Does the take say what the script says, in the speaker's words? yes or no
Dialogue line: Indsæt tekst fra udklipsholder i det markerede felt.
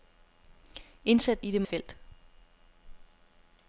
no